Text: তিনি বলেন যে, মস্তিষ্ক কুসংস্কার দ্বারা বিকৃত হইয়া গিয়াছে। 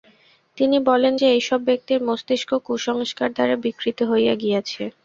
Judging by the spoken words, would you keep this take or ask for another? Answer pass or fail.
fail